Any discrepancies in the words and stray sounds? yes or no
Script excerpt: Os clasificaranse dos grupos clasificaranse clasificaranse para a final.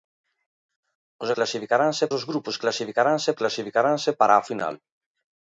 no